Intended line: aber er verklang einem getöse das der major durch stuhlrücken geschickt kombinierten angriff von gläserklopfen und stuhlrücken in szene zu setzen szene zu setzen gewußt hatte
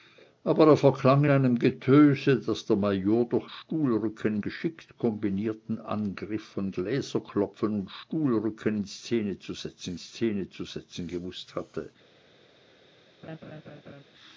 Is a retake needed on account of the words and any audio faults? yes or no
yes